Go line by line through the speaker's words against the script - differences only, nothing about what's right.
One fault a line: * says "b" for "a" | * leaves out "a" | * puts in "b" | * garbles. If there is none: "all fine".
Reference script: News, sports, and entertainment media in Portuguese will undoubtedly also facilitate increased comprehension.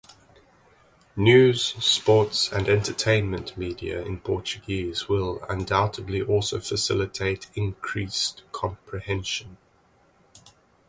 all fine